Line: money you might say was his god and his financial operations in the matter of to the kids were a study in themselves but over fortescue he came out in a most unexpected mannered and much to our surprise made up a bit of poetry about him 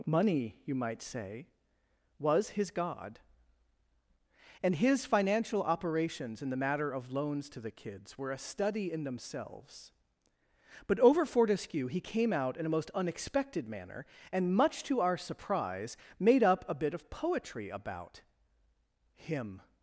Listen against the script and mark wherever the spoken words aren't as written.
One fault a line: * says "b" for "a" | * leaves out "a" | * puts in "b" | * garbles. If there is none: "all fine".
* puts in "loans"
* says "manner" for "mannered"